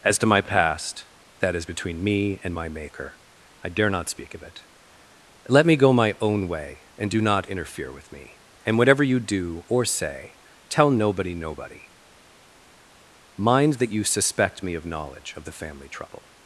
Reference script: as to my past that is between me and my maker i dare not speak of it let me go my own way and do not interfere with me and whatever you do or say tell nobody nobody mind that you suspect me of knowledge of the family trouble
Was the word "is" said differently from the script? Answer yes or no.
no